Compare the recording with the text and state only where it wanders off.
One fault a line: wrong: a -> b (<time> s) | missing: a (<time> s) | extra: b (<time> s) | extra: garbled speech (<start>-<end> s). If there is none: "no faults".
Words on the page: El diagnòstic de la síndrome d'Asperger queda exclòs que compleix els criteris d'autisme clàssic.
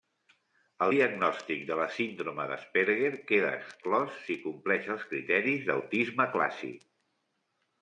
wrong: que -> si (4.3 s)